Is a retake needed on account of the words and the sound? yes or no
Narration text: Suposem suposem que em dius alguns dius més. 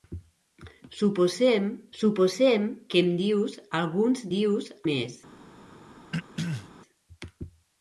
yes